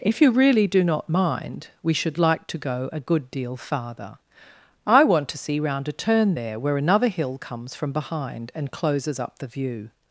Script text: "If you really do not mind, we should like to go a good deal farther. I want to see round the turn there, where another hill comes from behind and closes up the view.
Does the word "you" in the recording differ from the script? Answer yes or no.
no